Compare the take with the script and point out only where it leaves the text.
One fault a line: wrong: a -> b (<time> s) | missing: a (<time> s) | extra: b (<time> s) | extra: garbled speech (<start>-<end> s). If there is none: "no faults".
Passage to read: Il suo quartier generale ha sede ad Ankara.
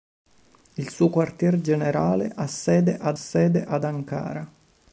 extra: sede ad (3.1 s)